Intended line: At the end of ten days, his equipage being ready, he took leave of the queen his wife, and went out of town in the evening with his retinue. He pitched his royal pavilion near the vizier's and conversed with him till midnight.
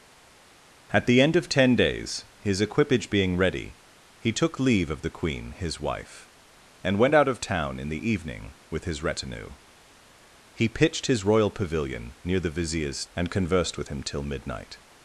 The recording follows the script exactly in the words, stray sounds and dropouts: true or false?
true